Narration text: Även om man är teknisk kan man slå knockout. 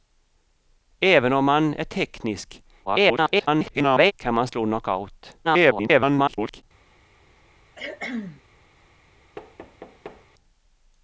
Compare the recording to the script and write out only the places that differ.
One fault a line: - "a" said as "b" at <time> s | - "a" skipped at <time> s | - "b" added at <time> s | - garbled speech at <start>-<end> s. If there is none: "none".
- garbled speech at 2.9-4.1 s
- garbled speech at 5.4-6.6 s